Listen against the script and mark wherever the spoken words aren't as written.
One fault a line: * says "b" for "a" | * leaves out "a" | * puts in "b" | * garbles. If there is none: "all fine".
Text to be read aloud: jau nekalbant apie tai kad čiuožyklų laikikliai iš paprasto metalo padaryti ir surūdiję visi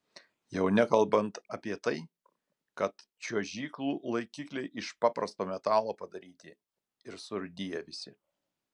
all fine